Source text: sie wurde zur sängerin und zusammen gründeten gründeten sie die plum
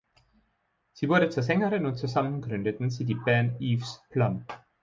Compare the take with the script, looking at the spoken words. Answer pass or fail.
fail